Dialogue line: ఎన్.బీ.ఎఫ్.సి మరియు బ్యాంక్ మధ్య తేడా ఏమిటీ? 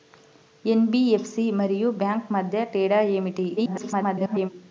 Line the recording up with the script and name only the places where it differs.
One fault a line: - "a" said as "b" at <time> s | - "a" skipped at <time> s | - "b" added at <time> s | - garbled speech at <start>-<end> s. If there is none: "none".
- garbled speech at 3.6-4.5 s